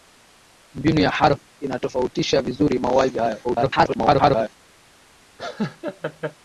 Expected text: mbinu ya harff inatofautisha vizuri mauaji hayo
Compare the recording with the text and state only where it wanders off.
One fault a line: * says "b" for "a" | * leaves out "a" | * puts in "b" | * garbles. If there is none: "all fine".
* garbles